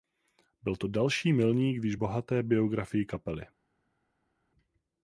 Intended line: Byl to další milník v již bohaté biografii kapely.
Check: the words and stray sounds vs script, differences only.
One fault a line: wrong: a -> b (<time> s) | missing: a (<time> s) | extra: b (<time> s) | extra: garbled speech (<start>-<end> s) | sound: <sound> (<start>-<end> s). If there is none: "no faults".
no faults